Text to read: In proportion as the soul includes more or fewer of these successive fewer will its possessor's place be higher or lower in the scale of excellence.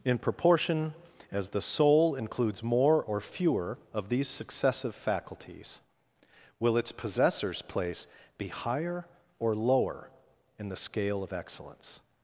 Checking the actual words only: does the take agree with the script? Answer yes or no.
no